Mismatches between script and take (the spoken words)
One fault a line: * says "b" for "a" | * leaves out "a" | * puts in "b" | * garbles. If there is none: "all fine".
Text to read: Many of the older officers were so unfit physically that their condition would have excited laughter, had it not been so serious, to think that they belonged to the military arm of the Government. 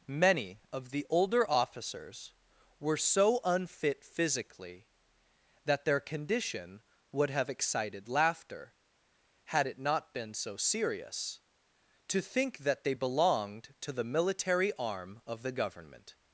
all fine